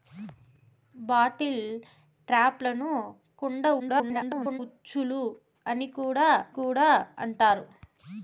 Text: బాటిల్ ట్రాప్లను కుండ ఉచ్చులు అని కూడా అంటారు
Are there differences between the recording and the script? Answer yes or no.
yes